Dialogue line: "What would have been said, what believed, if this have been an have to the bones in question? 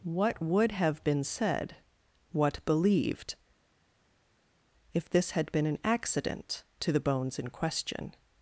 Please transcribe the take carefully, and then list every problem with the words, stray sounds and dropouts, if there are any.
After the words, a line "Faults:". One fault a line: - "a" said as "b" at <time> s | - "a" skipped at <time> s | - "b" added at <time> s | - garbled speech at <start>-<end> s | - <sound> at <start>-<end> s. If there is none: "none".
"What would have been said, what believed, if this had been an accident to the bones in question?
Faults:
- "have" said as "had" at 5.3 s
- "have" said as "accident" at 5.8 s